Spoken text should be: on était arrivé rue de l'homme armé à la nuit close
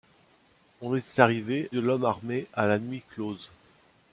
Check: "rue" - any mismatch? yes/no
yes